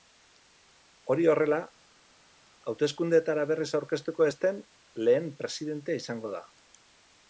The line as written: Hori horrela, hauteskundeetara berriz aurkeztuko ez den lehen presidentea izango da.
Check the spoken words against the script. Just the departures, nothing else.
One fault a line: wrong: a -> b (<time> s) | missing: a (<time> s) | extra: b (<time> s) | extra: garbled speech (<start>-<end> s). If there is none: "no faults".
no faults